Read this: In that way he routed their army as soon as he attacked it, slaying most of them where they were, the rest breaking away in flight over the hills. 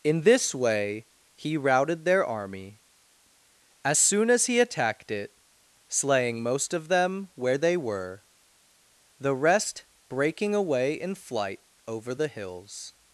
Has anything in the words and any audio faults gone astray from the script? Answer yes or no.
yes